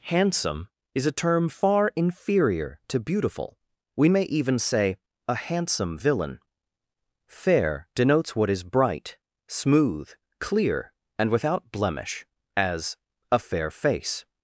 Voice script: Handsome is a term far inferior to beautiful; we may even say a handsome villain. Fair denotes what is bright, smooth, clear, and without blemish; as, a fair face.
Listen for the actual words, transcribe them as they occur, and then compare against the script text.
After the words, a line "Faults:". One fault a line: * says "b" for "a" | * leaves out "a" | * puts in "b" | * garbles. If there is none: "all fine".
Handsome is a term far inferior to beautiful; we may even say a handsome villain. Fair denotes what is bright, smooth, clear, and without blemish; as, a fair face.
Faults:
all fine